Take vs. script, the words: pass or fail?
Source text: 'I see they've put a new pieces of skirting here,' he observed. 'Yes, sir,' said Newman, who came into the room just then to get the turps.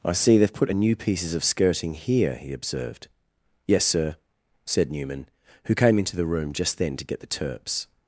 pass